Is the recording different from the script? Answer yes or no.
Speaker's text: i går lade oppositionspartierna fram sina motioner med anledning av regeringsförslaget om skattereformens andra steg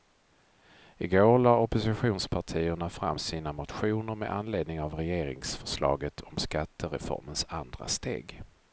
no